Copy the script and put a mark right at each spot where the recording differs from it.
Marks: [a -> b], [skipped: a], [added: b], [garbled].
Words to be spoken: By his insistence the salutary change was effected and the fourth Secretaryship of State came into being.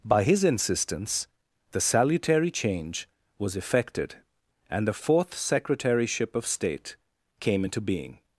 By his insistence the salutary change was effected and the fourth Secretaryship of State came into being.